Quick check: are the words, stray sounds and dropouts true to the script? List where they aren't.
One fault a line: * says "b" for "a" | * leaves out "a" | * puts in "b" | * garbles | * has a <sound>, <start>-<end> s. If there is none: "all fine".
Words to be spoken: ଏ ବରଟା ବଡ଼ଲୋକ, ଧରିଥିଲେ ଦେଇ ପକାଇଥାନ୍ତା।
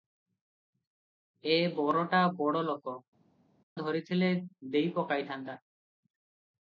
all fine